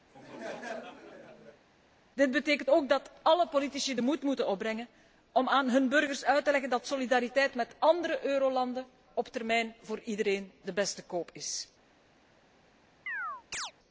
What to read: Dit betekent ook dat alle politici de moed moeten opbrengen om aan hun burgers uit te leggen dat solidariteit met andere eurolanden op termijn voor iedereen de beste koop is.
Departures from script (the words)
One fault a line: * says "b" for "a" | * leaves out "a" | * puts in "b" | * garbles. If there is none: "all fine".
all fine